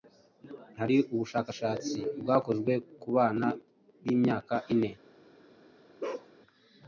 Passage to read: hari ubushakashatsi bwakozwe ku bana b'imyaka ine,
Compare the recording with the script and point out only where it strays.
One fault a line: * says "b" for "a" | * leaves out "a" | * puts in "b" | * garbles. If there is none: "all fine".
all fine